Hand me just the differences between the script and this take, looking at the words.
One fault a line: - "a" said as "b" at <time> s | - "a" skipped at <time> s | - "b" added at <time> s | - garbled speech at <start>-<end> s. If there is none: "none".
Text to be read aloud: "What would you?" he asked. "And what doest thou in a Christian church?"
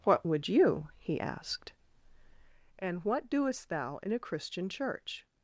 none